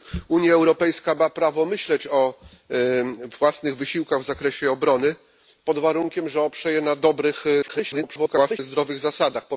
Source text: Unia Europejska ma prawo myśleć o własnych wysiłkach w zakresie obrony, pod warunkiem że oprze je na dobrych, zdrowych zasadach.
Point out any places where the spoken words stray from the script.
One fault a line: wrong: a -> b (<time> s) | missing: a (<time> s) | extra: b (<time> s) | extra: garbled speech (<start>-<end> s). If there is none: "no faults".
extra: garbled speech (7.6-8.6 s)